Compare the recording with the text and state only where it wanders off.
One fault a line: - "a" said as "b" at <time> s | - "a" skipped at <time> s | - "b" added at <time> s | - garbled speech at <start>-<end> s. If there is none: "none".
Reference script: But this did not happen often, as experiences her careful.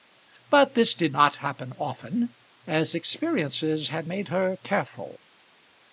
- "had made" added at 3.9 s